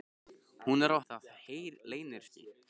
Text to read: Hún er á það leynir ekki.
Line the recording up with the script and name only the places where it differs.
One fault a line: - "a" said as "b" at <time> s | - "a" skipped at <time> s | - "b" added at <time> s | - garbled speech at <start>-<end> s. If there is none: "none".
none